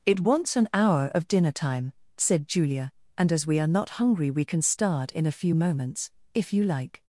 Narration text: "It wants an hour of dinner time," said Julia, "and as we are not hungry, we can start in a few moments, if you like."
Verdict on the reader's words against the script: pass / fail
pass